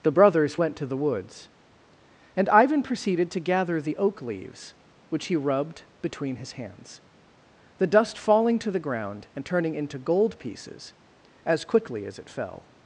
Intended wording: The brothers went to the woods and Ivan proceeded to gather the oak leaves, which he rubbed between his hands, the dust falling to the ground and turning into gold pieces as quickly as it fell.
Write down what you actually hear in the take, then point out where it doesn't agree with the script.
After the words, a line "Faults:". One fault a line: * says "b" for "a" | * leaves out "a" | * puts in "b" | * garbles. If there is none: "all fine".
The brothers went to the woods and Ivan proceeded to gather the oak leaves, which he rubbed between his hands, the dust falling to the ground and turning into gold pieces as quickly as it fell.
Faults:
all fine